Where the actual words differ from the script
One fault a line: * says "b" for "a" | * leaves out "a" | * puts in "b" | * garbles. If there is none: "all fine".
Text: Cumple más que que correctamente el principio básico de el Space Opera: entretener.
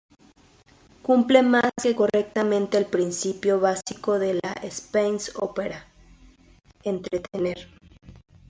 * leaves out "que"
* says "la" for "el"